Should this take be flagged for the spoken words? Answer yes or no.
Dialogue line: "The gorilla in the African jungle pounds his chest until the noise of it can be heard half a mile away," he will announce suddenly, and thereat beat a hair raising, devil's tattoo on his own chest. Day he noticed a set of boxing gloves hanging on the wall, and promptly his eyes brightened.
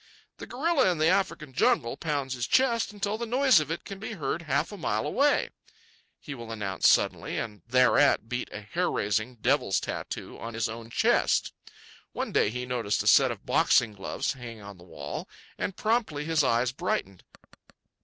yes